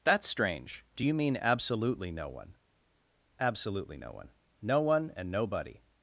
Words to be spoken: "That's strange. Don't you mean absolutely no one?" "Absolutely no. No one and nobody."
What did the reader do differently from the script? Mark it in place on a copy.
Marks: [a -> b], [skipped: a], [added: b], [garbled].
"That's strange. [Don't -> Do] you mean absolutely no one?" "Absolutely no. [added: one] No one and nobody."